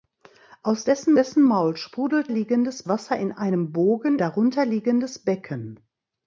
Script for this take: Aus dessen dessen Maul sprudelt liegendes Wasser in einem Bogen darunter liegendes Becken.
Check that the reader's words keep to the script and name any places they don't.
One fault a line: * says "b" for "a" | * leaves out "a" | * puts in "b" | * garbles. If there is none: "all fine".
all fine